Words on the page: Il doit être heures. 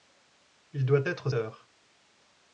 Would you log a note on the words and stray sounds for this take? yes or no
no